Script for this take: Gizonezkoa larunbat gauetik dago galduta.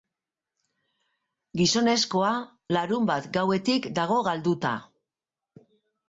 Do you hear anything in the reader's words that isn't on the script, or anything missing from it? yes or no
no